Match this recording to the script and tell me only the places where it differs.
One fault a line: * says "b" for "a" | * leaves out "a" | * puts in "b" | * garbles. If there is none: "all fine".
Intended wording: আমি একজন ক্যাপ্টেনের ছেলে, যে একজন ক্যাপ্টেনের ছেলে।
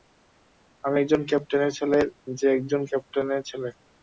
all fine